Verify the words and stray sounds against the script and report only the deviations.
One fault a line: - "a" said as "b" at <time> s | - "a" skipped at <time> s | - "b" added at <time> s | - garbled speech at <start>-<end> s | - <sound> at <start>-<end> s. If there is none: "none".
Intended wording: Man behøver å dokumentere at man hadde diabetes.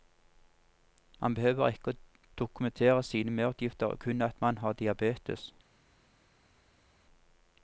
- "ikke" added at 1.7 s
- "sine merutgifter kun" added at 3.0 s
- "hadde" said as "har" at 4.6 s